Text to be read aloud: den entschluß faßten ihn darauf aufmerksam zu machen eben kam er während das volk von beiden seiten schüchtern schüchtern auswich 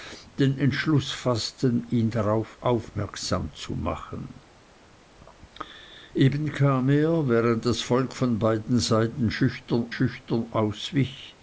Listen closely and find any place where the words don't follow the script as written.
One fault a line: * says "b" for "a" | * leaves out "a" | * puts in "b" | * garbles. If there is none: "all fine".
all fine